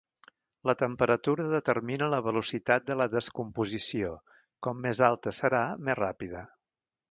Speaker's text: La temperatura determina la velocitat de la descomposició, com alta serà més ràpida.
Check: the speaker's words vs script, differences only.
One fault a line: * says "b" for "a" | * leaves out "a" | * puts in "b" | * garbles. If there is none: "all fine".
* puts in "més"